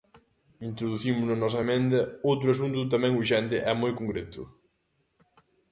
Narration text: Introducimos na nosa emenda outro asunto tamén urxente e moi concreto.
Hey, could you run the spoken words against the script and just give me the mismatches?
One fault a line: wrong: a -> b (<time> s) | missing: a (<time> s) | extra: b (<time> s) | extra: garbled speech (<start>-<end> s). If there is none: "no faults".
no faults